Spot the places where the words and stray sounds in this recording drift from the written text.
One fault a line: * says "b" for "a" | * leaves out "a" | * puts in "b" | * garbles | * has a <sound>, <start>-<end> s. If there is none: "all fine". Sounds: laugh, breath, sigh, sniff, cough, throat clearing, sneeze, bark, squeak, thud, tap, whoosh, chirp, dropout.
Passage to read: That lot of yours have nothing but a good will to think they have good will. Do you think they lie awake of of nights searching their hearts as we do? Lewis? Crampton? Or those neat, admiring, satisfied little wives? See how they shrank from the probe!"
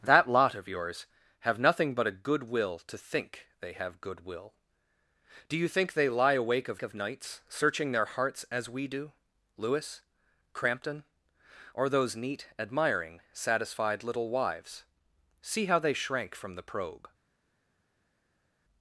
all fine